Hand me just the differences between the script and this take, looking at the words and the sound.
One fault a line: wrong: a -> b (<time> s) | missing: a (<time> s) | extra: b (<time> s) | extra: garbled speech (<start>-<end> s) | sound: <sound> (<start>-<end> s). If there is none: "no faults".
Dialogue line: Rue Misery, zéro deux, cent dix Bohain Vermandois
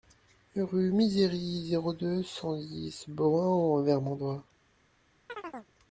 extra: en (3.5 s)
sound: chirp (5.3-5.7 s)